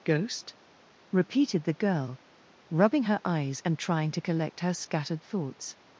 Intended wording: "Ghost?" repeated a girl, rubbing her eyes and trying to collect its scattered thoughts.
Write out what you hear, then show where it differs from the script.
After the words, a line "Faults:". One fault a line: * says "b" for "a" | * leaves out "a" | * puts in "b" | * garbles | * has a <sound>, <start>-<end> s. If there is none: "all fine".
"Ghost?" repeated the girl, rubbing her eyes and trying to collect her scattered thoughts.
Faults:
* says "the" for "a"
* says "her" for "its"